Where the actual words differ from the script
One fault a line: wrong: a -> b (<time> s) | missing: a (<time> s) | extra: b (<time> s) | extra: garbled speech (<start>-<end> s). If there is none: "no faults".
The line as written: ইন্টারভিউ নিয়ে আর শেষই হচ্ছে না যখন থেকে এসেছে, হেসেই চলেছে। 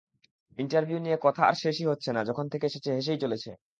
extra: কথা (1.2 s)